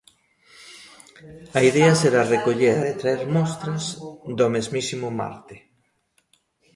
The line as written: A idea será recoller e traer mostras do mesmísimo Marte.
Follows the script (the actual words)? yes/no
yes